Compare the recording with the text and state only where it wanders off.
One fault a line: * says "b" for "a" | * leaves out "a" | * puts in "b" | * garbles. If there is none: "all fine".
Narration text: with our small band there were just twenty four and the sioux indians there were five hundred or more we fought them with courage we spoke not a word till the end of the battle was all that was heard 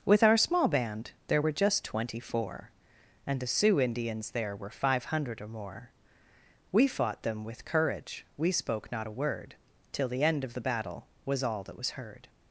all fine